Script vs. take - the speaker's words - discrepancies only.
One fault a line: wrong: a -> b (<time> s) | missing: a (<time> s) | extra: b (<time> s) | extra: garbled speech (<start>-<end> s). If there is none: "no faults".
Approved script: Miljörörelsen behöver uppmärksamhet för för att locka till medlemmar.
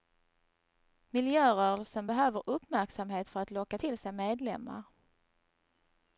missing: för (3.4 s)
extra: sig (4.0 s)